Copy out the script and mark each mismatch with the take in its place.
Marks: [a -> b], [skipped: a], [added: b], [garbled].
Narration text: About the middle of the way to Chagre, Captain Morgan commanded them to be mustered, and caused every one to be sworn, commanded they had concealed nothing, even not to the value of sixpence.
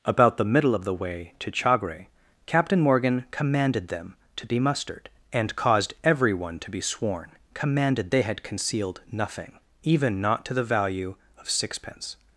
About the middle of the way to Chagre, Captain Morgan commanded them to be mustered, and caused every one to be sworn, commanded they had concealed nothing, even not to the value of sixpence.